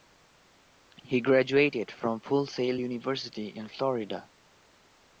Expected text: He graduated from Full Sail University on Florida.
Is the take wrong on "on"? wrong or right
wrong